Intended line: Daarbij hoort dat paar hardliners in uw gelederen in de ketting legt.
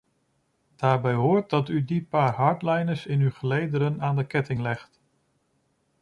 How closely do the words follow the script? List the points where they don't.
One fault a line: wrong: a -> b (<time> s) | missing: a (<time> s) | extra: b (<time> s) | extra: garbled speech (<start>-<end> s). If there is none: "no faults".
extra: u die (1.7 s)
wrong: in -> aan (4.0 s)